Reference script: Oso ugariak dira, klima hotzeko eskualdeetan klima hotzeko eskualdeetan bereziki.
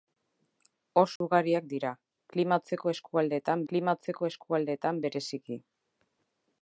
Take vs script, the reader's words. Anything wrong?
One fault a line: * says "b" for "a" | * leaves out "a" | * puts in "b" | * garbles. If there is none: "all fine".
all fine